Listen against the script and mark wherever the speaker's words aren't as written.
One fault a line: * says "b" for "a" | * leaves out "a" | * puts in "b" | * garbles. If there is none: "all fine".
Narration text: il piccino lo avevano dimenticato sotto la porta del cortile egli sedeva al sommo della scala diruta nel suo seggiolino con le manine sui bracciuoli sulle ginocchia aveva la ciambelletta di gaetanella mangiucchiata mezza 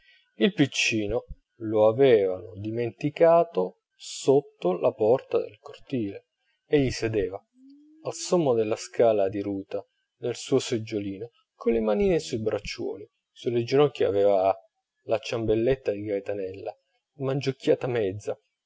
all fine